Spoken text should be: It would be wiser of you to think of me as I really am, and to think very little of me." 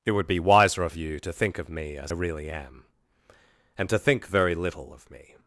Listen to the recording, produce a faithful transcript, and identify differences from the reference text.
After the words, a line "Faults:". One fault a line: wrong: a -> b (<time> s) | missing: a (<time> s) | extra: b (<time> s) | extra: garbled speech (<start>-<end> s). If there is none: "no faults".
It would be wiser of you to think of me as really am, and to think very little of me."
Faults:
missing: I (2.1 s)